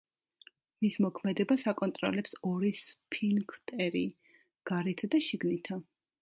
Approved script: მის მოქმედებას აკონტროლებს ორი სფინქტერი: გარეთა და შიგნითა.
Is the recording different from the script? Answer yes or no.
no